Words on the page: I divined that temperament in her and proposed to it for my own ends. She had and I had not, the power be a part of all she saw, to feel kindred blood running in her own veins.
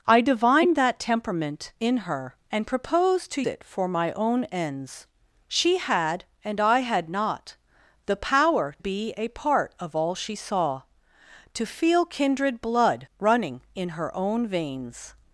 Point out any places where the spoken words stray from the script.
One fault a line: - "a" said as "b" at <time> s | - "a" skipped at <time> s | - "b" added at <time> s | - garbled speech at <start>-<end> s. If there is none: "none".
none